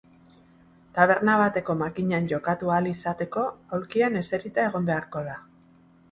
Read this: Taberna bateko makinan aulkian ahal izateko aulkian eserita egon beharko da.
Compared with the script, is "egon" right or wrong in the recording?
right